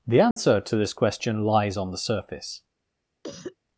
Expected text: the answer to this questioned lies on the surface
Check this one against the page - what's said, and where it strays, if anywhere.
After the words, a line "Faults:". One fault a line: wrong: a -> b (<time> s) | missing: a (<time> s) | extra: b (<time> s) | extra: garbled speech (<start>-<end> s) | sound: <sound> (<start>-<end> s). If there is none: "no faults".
the answer to this question lies on the surface
Faults:
sound: dropout (0.3-0.4 s)
wrong: questioned -> question (0.9 s)
sound: cough (3.2-3.6 s)